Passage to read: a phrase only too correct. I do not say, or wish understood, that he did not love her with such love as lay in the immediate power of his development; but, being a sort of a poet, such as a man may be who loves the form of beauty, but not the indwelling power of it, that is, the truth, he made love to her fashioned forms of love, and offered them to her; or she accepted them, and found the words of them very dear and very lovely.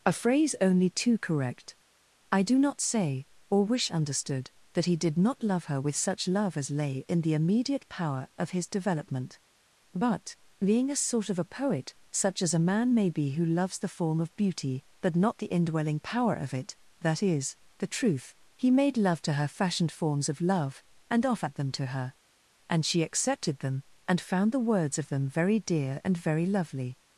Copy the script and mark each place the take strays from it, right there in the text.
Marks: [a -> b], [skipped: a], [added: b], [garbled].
a phrase only too correct. I do not say, or wish understood, that he did not love her with such love as lay in the immediate power of his development; but, being a sort of a poet, such as a man may be who loves the form of beauty, but not the indwelling power of it, that is, the truth, he made love to her fashioned forms of love, and offered them to her; [or -> and] she accepted them, and found the words of them very dear and very lovely.